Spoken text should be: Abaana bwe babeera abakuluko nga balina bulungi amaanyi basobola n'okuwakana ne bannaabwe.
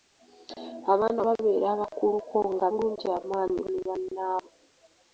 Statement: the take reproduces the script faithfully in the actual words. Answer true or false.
false